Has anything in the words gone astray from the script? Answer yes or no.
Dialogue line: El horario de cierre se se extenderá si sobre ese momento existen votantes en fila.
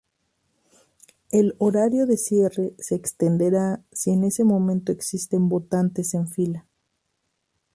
yes